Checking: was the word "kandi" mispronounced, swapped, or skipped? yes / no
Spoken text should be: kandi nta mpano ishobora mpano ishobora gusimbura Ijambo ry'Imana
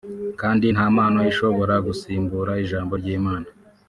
no